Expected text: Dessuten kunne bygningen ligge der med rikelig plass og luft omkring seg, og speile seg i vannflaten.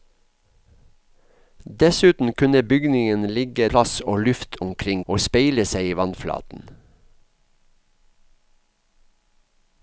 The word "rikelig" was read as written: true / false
false